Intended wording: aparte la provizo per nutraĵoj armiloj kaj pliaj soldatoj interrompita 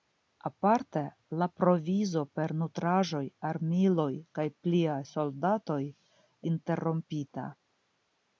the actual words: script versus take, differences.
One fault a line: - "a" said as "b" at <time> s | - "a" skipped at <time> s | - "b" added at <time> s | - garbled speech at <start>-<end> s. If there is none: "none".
none